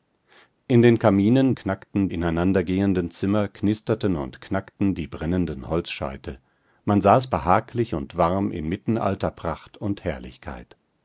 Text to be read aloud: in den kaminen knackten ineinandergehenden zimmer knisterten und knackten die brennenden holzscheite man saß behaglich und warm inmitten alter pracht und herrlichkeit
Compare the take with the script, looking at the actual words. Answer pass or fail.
pass